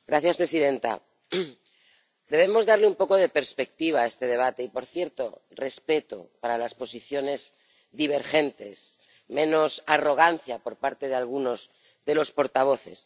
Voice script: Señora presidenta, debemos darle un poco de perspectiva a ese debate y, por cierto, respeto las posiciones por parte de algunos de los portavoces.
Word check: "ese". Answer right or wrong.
wrong